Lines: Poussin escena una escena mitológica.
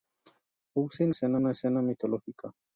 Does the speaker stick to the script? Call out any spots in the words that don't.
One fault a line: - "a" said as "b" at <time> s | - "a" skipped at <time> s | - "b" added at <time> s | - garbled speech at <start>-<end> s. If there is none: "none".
none